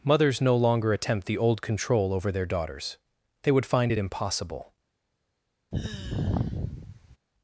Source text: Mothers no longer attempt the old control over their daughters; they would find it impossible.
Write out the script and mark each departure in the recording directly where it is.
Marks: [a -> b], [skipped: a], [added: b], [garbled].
Mothers no longer attempt the old control over their daughters; they would find it impossible.